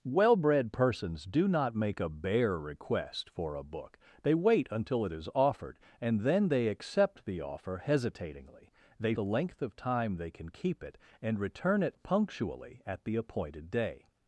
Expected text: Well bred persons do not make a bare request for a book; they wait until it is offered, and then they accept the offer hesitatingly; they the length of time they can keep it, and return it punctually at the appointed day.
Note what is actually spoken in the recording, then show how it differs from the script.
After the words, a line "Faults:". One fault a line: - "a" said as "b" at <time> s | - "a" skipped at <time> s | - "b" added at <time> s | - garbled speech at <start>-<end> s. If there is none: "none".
Well bred persons do not make a bare request for a book; they wait until it is offered, and then they accept the offer hesitatingly; they the length of time they can keep it, and return it punctually at the appointed day.
Faults:
none